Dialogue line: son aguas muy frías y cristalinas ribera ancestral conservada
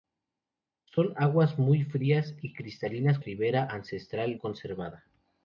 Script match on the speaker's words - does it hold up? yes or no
yes